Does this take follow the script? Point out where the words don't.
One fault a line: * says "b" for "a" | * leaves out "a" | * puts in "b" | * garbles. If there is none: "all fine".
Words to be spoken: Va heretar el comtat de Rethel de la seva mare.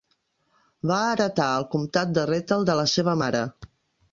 all fine